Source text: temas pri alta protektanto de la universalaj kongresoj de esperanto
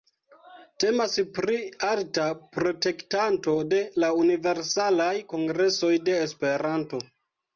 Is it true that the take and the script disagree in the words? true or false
false